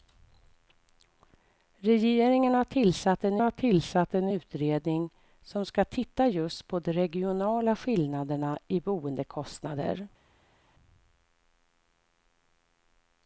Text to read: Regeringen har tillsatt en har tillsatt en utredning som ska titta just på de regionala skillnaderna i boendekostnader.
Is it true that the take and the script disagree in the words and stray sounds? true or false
false